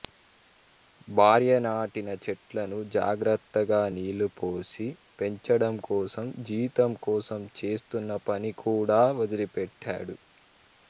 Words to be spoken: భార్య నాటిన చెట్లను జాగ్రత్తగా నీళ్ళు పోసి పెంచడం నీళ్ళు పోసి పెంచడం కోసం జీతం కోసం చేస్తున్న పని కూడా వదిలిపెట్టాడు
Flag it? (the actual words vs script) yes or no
yes